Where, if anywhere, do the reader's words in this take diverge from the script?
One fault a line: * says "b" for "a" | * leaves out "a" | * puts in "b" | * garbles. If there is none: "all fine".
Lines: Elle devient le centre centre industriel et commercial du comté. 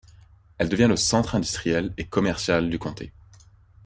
* leaves out "centre"